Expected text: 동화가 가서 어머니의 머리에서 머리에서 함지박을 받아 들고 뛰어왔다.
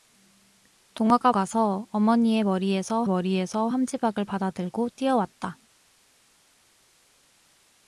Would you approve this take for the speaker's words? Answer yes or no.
yes